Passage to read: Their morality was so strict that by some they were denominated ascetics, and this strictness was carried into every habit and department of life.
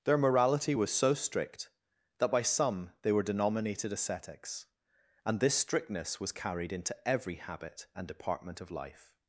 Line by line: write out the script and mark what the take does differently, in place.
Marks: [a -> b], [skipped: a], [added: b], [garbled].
Their morality was so strict that by some they were denominated ascetics, and this strictness was carried into every habit and department of life.